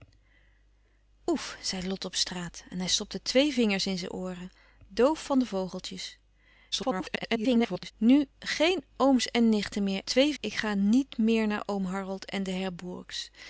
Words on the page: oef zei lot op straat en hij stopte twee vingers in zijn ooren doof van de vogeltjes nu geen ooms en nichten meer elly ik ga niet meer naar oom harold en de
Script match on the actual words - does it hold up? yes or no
no